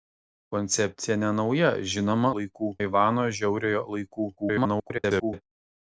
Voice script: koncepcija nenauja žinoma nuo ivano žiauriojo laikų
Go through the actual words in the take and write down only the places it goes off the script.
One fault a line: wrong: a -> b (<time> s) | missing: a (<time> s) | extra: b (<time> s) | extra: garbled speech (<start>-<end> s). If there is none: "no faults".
wrong: nuo -> laikų (2.4 s)
extra: garbled speech (4.4-5.4 s)